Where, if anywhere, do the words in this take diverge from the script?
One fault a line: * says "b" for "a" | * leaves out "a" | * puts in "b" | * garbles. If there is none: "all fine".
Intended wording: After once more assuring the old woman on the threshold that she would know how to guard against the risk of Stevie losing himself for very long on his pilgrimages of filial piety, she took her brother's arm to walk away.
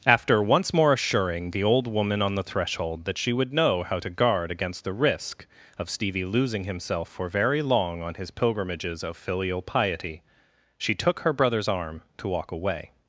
all fine